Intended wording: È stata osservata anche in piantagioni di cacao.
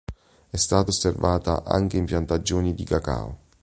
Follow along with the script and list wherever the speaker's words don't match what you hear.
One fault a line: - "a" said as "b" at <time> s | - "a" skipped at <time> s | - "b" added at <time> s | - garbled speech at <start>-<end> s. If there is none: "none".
none